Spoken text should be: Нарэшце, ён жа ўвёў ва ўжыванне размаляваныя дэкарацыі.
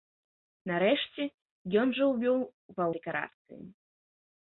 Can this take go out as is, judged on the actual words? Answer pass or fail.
fail